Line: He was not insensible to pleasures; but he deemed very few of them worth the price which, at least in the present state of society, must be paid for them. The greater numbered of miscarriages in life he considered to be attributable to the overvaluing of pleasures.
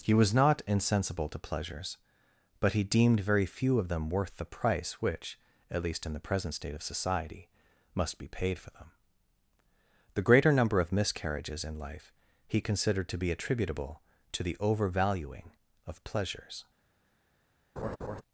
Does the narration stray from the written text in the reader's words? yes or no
yes